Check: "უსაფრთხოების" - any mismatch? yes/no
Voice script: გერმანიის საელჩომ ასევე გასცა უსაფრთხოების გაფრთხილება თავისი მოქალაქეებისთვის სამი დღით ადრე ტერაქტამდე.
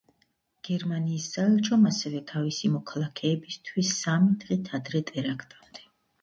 yes